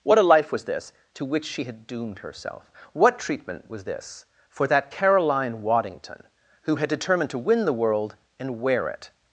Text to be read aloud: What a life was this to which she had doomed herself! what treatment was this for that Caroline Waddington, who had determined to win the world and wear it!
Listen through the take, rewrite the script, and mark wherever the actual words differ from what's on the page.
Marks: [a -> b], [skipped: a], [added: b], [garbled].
What a life was this to which she had doomed herself! what treatment was this for that Caroline Waddington, who had determined to win the world and wear it!